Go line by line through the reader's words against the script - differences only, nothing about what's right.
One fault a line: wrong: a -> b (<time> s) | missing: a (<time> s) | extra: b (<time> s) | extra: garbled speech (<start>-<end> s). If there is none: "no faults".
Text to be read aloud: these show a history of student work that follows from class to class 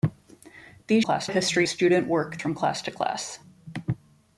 wrong: show -> class (1.0 s)
missing: of (1.7 s)
missing: that follows (2.4 s)